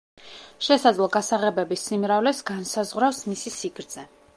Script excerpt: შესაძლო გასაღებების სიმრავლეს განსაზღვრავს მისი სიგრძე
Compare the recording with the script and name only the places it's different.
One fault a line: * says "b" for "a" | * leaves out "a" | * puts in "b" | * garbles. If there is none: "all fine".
all fine